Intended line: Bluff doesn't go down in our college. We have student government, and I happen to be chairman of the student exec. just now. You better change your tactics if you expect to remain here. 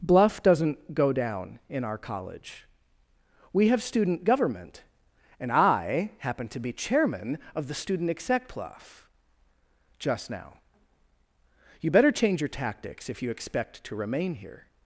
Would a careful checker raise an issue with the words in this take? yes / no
yes